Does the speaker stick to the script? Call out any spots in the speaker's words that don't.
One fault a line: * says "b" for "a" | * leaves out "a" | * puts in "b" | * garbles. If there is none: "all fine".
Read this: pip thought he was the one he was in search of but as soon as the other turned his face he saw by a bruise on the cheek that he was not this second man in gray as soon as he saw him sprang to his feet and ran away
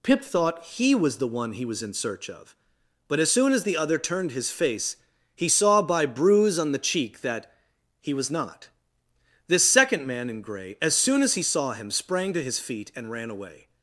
* leaves out "a"